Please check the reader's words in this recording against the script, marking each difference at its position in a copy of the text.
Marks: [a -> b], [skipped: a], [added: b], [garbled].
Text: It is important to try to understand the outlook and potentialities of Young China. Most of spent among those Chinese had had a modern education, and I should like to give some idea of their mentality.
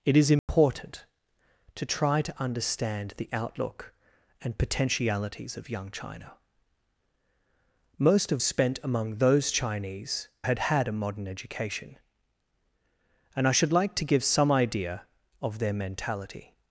It is important to try to understand the outlook and potentialities of Young China. Most of spent among those Chinese had had a modern education, and I should like to give some idea of their mentality.